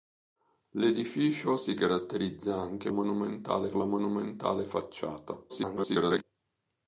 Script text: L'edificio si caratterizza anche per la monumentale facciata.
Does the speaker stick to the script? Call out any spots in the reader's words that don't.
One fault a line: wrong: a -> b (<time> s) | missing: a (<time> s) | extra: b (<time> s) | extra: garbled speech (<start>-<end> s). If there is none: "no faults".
wrong: per -> monumentale (2.9 s)
extra: garbled speech (5.5-6.2 s)